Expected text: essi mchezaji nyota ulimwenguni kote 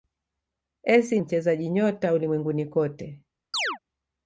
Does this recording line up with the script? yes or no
yes